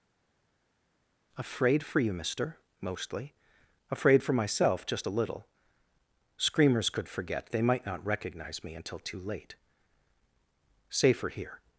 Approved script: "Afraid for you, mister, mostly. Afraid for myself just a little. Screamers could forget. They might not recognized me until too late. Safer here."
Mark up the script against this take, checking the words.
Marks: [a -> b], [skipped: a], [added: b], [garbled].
"Afraid for you, mister, mostly. Afraid for myself just a little. Screamers could forget. They might not [recognized -> recognize] me until too late. Safer here."